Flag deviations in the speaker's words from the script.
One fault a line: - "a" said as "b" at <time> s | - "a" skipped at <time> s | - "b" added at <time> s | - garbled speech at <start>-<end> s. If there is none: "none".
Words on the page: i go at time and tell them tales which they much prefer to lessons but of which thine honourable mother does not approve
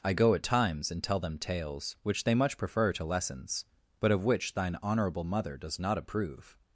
- "time" said as "times" at 0.4 s